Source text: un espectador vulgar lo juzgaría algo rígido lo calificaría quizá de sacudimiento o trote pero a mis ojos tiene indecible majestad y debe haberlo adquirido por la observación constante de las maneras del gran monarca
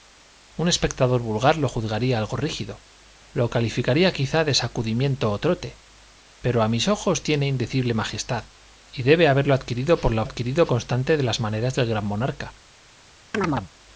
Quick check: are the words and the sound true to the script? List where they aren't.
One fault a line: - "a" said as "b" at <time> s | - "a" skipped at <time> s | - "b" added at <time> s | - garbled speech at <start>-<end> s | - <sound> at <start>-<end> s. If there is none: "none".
- "observación" said as "adquirido" at 10.2 s
- chirp at 13.3-13.7 s